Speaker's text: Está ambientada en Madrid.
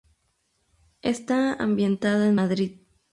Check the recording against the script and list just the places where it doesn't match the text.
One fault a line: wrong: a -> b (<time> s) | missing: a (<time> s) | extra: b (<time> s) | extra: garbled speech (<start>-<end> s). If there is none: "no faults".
no faults